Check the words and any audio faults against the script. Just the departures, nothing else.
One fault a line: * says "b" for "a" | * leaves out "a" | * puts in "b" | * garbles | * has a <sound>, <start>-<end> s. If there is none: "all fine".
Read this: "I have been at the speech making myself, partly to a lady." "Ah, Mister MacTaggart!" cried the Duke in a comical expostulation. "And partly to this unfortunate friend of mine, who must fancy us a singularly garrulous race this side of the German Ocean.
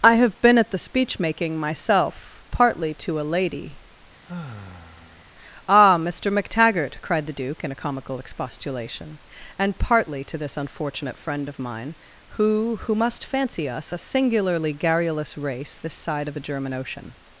* has a sigh, 4.3-5.3 s
* puts in "who"